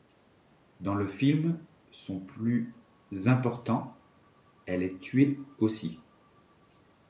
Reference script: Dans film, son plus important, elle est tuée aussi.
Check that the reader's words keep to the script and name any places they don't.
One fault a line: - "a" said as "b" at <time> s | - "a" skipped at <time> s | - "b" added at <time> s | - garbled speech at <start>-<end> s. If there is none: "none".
- "le" added at 0.9 s